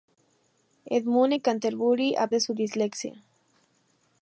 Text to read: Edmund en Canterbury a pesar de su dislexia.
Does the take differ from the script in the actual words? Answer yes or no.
yes